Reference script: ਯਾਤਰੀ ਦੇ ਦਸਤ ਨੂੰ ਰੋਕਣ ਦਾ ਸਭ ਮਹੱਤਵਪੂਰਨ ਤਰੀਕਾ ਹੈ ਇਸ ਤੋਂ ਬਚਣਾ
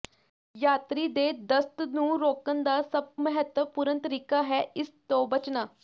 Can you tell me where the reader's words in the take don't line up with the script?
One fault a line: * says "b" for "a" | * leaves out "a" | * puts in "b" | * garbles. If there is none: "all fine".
all fine